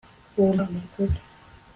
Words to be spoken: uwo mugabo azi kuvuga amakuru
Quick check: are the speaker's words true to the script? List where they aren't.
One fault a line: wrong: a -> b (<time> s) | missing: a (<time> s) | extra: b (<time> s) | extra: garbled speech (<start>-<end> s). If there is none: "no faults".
missing: mugabo azi kuvuga (0.5 s)